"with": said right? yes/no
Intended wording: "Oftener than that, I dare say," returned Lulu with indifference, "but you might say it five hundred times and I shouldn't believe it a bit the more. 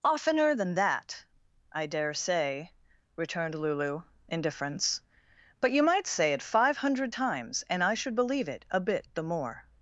no